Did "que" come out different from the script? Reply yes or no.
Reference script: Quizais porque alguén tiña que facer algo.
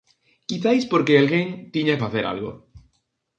yes